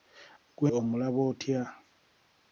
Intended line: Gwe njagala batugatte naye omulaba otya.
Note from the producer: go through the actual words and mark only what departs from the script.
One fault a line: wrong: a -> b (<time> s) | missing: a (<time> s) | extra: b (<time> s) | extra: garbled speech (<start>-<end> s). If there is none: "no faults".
missing: njagala batugatte naye (0.7 s)